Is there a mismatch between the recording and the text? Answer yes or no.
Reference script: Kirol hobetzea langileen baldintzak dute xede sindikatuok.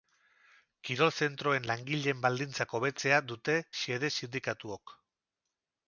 yes